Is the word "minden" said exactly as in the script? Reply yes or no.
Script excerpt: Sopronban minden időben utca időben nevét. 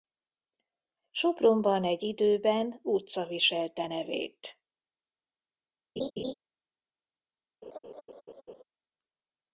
no